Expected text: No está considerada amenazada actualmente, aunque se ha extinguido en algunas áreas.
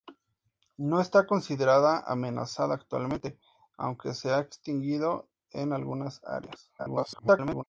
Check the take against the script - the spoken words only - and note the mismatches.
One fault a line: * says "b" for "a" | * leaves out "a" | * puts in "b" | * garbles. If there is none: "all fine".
* garbles